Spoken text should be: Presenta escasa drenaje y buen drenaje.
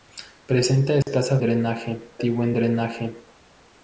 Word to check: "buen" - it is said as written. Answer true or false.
true